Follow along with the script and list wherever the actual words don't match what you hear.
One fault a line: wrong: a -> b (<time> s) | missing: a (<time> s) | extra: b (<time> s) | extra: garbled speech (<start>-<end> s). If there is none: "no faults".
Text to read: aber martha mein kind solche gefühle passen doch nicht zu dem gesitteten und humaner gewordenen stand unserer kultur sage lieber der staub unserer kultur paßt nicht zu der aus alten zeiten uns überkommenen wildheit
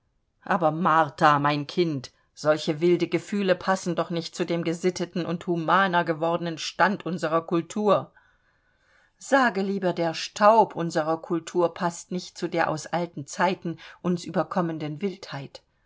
extra: wilde (2.8 s)